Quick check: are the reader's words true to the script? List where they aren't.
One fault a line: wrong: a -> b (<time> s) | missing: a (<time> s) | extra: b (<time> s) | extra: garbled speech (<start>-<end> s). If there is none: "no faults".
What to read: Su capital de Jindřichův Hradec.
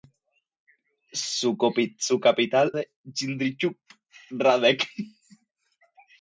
no faults